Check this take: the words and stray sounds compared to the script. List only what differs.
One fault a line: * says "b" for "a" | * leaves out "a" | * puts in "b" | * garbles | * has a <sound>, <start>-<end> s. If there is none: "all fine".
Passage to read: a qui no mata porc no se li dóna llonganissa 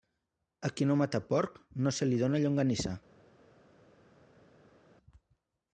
all fine